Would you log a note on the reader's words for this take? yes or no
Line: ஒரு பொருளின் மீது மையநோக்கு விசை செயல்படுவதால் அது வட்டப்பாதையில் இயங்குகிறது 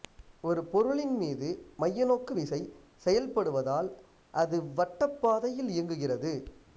no